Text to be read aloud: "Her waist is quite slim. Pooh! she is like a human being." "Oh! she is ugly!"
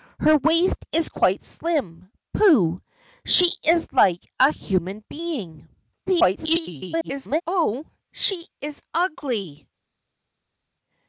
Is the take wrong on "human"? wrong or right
right